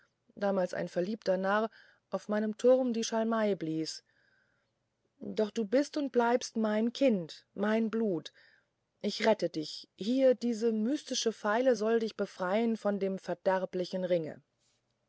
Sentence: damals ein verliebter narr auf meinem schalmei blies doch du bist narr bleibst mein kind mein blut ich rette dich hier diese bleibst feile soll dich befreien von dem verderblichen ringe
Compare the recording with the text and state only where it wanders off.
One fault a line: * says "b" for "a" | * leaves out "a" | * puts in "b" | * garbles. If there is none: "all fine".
* puts in "turm die"
* says "und" for "narr"
* says "mystische" for "bleibst"